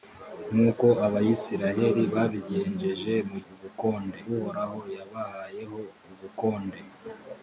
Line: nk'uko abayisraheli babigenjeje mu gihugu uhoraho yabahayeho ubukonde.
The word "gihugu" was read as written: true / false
false